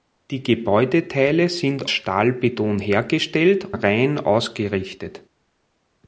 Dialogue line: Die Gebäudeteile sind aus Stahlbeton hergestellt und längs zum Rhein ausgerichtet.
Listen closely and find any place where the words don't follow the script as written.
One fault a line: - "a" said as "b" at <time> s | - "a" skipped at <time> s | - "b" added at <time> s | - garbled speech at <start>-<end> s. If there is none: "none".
- "aus" skipped at 1.9 s
- "und längs zum" skipped at 3.7 s